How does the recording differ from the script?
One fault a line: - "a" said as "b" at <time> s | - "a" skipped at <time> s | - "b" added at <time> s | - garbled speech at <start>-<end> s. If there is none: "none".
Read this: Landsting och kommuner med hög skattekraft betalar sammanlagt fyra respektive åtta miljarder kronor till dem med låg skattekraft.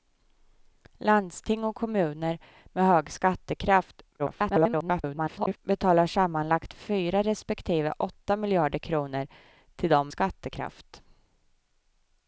- garbled speech at 4.2-5.6 s
- "med låg" skipped at 10.1 s